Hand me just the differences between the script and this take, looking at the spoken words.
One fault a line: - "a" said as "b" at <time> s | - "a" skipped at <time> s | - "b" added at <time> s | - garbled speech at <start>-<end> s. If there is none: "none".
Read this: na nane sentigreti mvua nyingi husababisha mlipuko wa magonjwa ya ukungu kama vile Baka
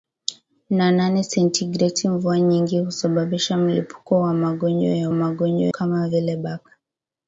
- "ukungu" said as "magonjwa" at 5.1 s